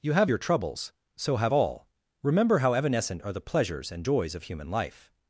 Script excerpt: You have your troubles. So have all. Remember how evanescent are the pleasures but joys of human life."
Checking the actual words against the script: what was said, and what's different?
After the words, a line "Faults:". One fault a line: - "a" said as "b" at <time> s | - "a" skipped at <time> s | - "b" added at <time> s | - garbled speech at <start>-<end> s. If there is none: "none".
You have your troubles. So have all. Remember how evanescent are the pleasures and joys of human life."
Faults:
- "but" said as "and" at 3.9 s